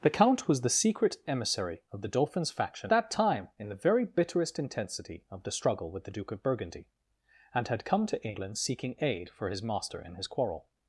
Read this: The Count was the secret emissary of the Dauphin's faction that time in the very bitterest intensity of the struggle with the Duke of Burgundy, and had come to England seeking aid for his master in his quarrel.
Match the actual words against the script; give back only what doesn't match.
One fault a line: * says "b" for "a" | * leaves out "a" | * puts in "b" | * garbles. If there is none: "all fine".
all fine